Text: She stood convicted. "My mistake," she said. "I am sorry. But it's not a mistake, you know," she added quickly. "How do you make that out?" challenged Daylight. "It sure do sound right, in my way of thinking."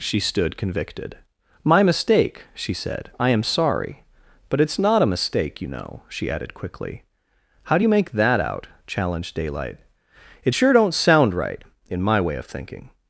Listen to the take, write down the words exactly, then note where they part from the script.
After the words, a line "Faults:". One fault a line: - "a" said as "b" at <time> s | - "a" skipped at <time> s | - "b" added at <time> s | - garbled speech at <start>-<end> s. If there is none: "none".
She stood convicted. "My mistake," she said. "I am sorry. But it's not a mistake, you know," she added quickly. "How do you make that out?" challenged Daylight. "It sure don't sound right, in my way of thinking."
Faults:
- "do" said as "don't" at 10.7 s